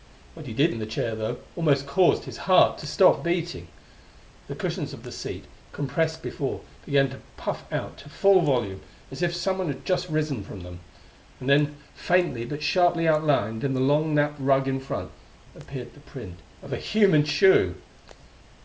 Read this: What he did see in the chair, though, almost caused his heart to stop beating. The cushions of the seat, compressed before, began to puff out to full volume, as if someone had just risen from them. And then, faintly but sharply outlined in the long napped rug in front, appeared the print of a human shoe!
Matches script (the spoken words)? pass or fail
fail